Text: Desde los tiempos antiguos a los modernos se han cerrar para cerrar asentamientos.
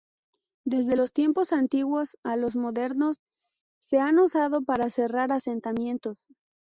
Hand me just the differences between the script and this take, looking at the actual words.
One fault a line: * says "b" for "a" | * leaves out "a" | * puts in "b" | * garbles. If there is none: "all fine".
* says "usado" for "cerrar"